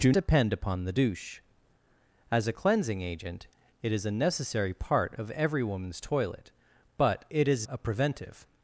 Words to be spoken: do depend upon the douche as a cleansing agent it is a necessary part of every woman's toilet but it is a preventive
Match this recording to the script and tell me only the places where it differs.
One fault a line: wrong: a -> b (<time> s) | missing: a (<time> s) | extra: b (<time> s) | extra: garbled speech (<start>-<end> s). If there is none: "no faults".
no faults